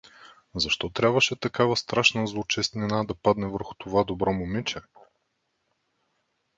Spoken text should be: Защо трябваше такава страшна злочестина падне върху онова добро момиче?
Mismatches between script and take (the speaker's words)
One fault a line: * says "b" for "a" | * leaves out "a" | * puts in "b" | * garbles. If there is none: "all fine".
* puts in "да"
* says "това" for "онова"